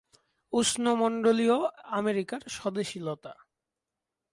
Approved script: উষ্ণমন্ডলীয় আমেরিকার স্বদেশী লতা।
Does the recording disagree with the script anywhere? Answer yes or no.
no